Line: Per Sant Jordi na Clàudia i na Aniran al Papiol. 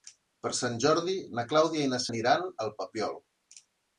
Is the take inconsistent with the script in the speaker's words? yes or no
no